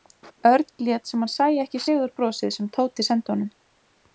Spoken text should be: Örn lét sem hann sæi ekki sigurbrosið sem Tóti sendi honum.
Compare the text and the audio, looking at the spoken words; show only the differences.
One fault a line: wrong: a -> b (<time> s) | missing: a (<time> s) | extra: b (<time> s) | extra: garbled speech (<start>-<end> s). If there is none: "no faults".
no faults